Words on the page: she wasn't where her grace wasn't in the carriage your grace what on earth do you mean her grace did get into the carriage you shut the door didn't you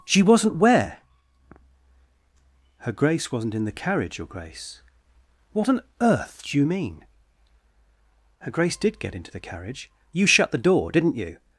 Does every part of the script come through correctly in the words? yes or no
yes